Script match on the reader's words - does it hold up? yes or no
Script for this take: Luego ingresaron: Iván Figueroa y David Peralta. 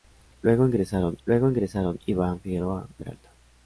no